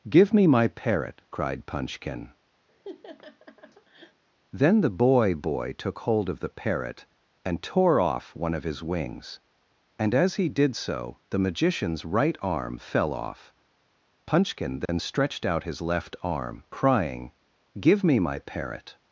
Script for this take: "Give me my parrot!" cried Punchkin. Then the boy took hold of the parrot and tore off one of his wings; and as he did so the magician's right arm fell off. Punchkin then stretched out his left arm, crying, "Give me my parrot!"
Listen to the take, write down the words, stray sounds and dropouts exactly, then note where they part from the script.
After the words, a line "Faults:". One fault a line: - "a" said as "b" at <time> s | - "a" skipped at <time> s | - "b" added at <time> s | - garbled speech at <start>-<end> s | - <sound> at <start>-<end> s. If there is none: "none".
"Give me my parrot!" cried Punchkin. Then the boy boy took hold of the parrot and tore off one of his wings; and as he did so the magician's right arm fell off. Punchkin then stretched out his left arm, crying, "Give me my parrot!"
Faults:
- laugh at 2.7-4.2 s
- "boy" added at 5.3 s
- dropout at 14.9-14.9 s